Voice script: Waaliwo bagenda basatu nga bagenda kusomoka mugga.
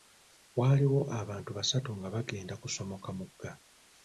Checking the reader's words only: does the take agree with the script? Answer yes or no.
no